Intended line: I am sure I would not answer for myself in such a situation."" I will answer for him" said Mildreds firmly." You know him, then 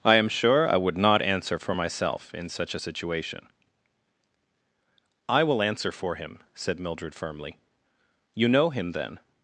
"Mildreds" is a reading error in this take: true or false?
true